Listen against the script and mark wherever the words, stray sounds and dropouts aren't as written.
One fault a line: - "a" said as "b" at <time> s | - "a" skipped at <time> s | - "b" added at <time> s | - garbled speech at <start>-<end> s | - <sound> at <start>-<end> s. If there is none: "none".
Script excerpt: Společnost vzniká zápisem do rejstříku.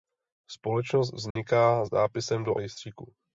- dropout at 1.3-1.4 s